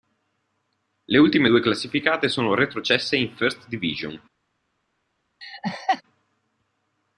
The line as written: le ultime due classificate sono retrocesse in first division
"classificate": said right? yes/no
yes